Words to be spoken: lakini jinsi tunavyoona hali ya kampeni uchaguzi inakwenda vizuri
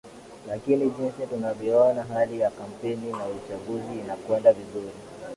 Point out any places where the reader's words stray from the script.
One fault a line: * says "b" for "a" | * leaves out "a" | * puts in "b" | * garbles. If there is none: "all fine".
* puts in "na"